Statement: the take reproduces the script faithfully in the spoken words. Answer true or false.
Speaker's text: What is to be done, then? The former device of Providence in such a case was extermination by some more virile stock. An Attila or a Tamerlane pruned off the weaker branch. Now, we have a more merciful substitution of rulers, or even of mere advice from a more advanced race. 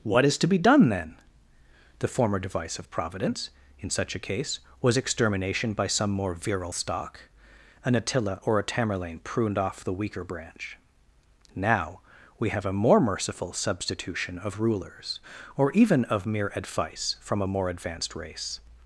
true